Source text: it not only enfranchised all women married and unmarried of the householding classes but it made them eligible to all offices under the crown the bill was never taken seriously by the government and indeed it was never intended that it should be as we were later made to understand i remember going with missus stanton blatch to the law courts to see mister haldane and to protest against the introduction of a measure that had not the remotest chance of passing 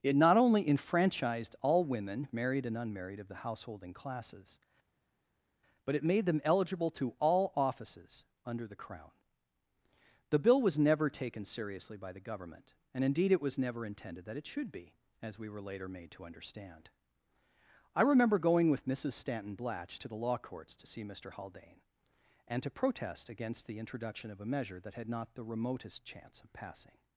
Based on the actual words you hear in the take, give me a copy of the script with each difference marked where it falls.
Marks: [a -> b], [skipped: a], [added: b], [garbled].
it not only enfranchised all women married and unmarried of the householding classes but it made them eligible to all offices under the crown the bill was never taken seriously by the government and indeed it was never intended that it should be as we were later made to understand i remember going with missus stanton blatch to the law courts to see mister haldane and to protest against the introduction of a measure that had not the remotest chance of passing